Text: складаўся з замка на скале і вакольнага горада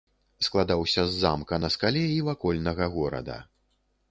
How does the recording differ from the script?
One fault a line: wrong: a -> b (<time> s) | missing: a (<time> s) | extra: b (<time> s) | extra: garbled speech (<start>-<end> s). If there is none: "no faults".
no faults